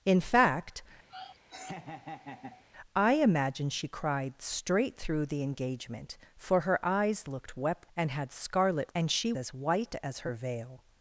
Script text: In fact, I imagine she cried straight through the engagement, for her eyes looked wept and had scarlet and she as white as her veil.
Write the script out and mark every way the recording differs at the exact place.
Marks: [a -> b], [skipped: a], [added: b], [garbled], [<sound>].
In fact, [laugh] I imagine she cried straight through the engagement, for her eyes looked wept and had scarlet and she as white as her veil.